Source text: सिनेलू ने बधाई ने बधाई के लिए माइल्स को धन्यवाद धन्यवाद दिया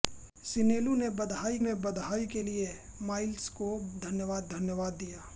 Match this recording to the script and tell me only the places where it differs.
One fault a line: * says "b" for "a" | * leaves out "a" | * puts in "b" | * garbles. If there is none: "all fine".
all fine